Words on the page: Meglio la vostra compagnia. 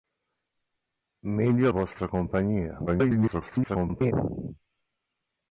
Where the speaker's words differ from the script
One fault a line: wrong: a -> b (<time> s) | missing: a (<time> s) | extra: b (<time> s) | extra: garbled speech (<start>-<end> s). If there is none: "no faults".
missing: la (1.7 s)
extra: garbled speech (2.9-4.1 s)